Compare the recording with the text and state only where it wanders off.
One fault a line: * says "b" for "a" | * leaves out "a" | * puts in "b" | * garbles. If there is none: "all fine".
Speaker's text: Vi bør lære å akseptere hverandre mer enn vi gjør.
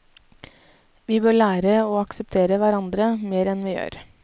all fine